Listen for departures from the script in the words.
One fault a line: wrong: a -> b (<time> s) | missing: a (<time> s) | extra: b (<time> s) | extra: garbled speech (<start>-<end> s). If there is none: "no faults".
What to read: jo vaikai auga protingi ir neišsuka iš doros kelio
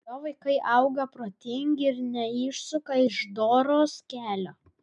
no faults